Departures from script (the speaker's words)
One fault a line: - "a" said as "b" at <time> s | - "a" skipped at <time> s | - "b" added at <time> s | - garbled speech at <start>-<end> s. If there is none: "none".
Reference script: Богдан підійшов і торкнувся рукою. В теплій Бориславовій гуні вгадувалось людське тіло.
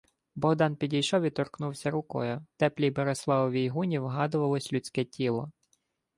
- "В" skipped at 2.5 s